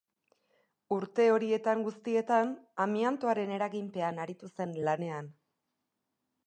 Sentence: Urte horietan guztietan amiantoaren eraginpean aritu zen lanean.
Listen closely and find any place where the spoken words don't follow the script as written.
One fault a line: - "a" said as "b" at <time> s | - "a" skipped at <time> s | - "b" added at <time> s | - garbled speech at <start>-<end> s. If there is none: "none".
none